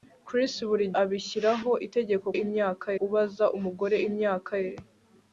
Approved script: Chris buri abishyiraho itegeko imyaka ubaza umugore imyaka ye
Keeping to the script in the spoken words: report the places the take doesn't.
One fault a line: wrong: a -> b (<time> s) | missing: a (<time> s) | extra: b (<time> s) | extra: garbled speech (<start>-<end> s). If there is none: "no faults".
no faults